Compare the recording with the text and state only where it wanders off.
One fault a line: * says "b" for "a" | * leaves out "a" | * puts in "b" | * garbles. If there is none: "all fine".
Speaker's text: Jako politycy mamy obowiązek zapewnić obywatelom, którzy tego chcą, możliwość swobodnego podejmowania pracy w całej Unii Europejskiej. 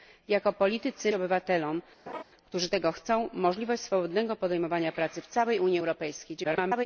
* leaves out "mamy obowiązek zapewnić"
* garbles